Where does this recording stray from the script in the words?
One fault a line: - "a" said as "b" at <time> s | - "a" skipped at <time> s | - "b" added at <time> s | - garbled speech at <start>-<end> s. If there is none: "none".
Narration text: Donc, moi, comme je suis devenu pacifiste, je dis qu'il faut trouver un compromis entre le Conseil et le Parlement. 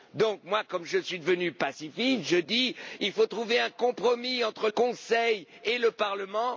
- "le" skipped at 4.7 s